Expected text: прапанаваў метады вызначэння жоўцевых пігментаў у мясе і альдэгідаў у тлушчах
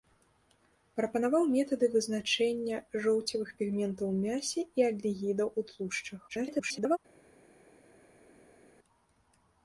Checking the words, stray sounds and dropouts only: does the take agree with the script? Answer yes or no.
no